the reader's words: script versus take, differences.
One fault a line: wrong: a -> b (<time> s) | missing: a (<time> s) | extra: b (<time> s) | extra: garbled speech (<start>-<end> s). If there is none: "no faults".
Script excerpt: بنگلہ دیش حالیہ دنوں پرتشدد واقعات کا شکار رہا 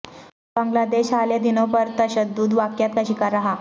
no faults